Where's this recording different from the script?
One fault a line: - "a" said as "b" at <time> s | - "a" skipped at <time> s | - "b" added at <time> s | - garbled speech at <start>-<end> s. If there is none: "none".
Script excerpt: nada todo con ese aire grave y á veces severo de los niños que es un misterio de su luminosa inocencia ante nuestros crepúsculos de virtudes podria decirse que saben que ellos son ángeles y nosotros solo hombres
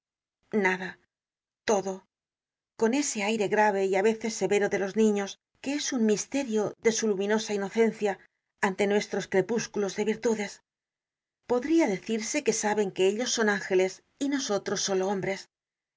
none